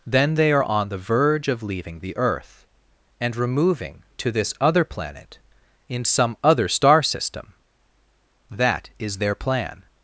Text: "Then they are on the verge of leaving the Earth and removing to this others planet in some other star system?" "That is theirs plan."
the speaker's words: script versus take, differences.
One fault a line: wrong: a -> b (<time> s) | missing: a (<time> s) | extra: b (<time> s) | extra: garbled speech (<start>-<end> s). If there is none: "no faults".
wrong: others -> other (4.6 s)
wrong: theirs -> their (9.2 s)